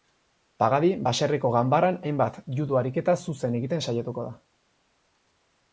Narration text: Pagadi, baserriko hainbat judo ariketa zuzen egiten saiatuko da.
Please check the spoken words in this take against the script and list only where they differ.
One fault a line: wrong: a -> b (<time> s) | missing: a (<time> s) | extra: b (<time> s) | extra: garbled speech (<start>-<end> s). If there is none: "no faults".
extra: ganbaran (1.5 s)